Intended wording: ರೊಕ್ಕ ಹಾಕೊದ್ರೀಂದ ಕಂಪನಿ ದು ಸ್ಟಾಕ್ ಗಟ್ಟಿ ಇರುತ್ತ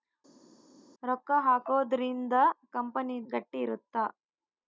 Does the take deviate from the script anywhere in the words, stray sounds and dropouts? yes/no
yes